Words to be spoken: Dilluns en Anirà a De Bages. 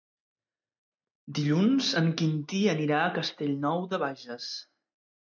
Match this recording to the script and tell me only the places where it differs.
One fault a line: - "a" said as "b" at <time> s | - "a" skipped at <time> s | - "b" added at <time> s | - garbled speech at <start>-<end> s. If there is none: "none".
- "Quintí" added at 2.2 s
- "Castellnou" added at 3.2 s